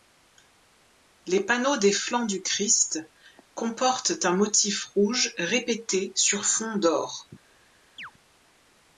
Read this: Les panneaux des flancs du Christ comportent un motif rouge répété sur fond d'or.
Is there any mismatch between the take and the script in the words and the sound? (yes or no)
yes